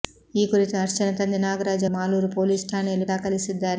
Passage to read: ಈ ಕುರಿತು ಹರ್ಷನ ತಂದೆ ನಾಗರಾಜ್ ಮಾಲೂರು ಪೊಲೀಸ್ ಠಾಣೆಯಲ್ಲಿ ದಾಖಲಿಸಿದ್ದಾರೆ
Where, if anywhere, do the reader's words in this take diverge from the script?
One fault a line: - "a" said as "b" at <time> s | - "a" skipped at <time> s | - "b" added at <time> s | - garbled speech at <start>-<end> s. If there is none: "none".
none